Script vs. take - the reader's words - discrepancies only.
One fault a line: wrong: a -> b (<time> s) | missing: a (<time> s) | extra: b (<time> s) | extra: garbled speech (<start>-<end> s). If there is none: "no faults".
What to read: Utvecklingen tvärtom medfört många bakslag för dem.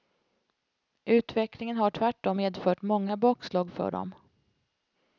extra: har (1.8 s)